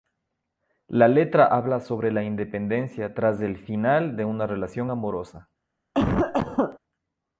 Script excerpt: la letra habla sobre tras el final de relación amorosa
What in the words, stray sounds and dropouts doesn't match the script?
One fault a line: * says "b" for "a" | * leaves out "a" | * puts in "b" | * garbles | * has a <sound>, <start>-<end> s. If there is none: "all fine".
* puts in "la independencia"
* puts in "una"
* has a cough, 5.9-6.8 s